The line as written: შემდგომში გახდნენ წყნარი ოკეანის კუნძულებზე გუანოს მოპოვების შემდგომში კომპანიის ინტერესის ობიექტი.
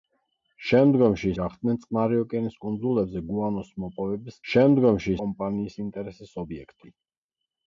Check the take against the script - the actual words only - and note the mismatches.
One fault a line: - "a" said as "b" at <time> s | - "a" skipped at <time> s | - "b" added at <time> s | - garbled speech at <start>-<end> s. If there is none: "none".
none